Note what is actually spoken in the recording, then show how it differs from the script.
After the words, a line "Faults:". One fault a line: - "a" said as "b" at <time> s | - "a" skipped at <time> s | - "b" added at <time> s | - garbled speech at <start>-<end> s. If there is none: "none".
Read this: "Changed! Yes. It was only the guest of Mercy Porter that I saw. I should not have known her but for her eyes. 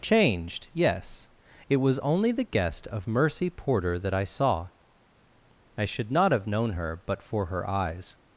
"Changed! Yes. It was only the guest of Mercy Porter that I saw. I should not have known her but for her eyes.
Faults:
none